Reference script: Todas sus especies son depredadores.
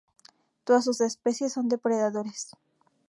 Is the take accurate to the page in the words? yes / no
yes